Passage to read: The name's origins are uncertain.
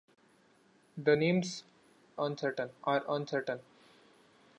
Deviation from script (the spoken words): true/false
true